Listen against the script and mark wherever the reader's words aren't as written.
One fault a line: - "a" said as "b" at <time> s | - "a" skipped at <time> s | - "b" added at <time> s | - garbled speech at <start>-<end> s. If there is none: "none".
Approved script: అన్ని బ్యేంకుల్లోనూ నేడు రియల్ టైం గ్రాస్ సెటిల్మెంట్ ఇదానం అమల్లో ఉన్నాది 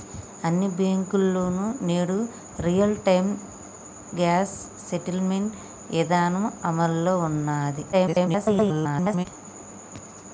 - garbled speech at 7.9-9.3 s